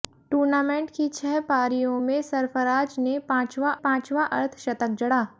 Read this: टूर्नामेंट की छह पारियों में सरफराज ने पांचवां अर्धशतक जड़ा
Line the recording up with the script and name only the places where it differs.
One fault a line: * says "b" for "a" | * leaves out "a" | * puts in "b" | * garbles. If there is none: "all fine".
* puts in "पांचवां"